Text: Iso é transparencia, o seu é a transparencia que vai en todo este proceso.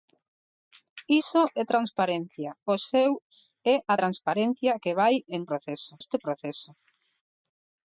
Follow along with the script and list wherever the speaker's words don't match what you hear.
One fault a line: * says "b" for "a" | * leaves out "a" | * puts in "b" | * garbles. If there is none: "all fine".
* says "proceso" for "todo"